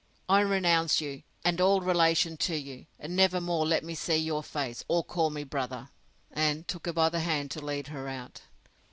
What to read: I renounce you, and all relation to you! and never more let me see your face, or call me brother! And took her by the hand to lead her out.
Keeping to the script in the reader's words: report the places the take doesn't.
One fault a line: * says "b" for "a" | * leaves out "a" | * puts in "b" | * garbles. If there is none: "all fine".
all fine